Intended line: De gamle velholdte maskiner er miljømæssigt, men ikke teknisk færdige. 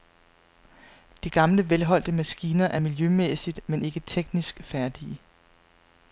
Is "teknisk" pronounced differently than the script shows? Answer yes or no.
no